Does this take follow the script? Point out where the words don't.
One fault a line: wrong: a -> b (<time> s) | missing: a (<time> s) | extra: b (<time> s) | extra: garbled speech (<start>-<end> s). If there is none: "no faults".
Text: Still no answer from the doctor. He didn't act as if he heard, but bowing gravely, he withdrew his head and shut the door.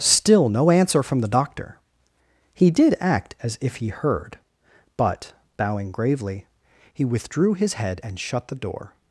wrong: didn't -> did (2.7 s)